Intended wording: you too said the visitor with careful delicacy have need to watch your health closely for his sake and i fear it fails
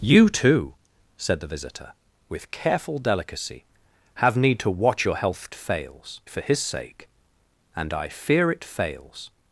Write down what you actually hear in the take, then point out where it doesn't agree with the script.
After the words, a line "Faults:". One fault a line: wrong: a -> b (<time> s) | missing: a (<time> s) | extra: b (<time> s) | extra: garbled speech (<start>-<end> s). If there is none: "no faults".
you too said the visitor with careful delicacy have need to watch your health fails for his sake and i fear it fails
Faults:
wrong: closely -> fails (5.5 s)